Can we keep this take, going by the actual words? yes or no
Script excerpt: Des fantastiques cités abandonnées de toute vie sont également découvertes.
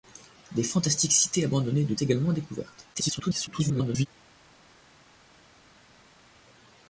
no